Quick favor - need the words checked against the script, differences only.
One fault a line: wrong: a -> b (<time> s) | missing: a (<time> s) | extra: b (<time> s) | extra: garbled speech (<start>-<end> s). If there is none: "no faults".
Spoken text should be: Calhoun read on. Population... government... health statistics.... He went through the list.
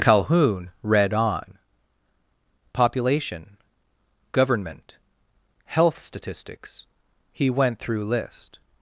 missing: the (8.0 s)